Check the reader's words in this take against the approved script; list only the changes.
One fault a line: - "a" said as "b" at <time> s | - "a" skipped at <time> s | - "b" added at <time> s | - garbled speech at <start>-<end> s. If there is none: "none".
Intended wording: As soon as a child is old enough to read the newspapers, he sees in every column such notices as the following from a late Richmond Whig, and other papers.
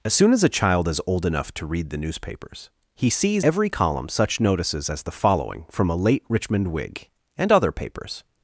- "in" skipped at 3.5 s